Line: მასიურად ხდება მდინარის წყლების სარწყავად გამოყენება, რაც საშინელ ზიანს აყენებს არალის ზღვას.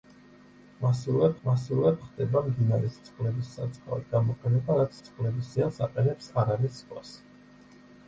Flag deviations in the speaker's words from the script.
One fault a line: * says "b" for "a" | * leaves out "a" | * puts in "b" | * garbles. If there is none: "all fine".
* puts in "მასიურად"
* says "წყლების" for "საშინელ"